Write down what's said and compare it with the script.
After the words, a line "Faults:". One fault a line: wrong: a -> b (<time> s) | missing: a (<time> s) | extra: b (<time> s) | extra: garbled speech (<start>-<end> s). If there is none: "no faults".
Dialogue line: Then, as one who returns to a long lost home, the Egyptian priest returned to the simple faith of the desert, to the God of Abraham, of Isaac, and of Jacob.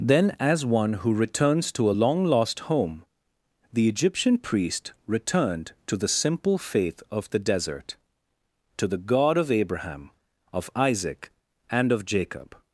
Then, as one who returns to a long lost home, the Egyptian priest returned to the simple faith of the desert, to the God of Abraham, of Isaac, and of Jacob.
Faults:
no faults